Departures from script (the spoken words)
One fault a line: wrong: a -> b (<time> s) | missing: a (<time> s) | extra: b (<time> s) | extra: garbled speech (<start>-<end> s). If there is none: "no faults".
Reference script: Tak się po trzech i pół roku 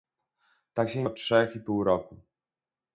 no faults